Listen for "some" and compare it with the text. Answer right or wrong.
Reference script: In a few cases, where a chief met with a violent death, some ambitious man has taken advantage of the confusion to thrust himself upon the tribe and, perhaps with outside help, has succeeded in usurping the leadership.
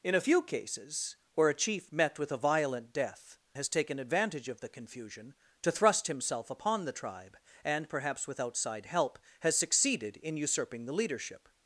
wrong